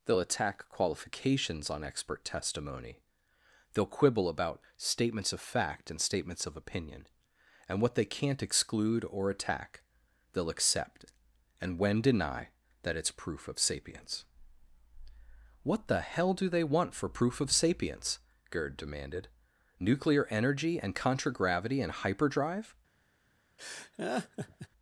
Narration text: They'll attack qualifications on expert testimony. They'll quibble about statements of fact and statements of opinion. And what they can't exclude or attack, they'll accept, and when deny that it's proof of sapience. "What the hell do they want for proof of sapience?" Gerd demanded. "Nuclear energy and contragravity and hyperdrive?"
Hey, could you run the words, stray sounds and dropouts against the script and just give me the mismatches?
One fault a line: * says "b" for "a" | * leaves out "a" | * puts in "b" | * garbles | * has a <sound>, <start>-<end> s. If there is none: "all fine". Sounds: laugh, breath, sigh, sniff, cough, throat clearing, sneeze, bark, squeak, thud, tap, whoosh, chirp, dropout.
* has a laugh, 23.6-24.7 s